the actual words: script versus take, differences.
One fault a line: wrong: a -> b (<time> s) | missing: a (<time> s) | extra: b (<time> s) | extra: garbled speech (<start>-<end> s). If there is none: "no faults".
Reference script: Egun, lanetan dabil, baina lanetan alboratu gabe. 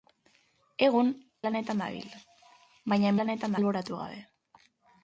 no faults